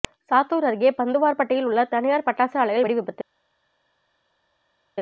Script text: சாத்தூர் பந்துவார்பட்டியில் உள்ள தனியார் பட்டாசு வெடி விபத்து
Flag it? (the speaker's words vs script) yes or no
yes